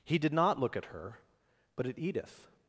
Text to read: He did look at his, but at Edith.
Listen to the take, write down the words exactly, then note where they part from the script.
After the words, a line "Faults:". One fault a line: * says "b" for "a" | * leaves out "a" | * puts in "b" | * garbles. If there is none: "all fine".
He did not look at her, but at Edith.
Faults:
* puts in "not"
* says "her" for "his"